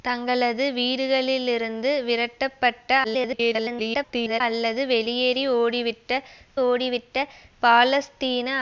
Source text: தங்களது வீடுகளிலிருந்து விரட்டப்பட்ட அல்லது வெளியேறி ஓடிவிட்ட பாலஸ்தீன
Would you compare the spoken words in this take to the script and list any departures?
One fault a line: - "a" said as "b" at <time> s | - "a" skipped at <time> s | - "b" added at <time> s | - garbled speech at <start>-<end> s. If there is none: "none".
- garbled speech at 3.0-4.4 s
- "ஓடிவிட்ட" added at 6.6 s